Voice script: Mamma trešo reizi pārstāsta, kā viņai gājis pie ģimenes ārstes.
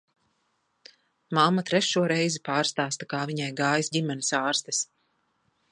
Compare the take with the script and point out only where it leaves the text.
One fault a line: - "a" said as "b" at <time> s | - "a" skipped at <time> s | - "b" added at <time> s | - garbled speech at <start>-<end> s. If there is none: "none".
- "pie" skipped at 3.9 s